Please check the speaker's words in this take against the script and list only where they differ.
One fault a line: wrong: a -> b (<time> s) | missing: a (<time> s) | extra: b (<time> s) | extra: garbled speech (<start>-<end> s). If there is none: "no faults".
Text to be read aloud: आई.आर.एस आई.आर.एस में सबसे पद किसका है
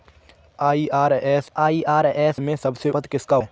no faults